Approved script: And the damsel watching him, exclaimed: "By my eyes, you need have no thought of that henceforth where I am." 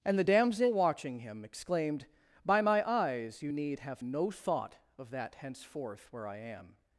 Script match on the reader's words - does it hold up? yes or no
yes